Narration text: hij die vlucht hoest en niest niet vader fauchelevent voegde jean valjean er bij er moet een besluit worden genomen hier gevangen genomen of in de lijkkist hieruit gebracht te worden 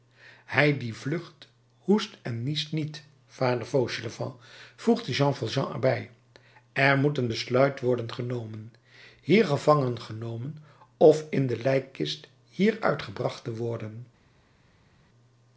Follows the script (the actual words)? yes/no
yes